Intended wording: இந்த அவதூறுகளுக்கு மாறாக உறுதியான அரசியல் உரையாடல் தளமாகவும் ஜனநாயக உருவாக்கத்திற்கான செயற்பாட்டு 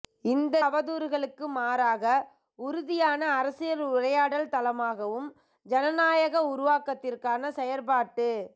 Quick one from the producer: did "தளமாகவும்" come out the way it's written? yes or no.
yes